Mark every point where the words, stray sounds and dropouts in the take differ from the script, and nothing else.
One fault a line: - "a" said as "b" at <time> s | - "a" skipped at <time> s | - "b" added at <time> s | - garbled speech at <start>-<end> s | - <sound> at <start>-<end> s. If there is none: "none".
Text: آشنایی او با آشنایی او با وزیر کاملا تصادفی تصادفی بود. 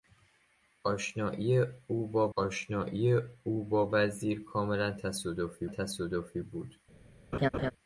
- laugh at 7.3-7.7 s